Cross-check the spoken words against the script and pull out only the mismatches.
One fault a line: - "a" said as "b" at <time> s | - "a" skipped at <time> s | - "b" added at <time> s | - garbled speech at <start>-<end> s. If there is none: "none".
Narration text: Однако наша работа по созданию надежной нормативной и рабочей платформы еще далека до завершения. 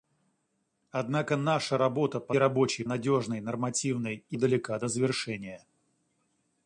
- "созданию" said as "рабочей" at 2.3 s
- "рабочей платформы еще" skipped at 4.4 s